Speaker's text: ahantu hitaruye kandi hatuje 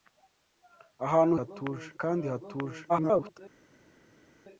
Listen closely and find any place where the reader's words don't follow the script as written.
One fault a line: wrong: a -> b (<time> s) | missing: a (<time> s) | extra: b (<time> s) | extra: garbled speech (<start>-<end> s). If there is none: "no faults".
wrong: hitaruye -> hatuje (1.4 s)
extra: garbled speech (2.9-3.4 s)